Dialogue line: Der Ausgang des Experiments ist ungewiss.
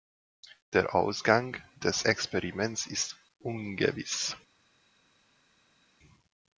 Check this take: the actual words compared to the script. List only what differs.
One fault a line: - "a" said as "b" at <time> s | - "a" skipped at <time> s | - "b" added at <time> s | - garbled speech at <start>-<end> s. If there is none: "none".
none